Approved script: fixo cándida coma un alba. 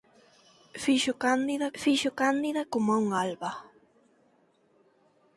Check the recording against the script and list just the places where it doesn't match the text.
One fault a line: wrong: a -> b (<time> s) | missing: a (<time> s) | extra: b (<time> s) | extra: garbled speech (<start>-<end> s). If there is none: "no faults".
extra: fixo cándida (1.8 s)